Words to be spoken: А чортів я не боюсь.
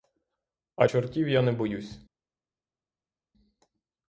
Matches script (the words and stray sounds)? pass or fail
pass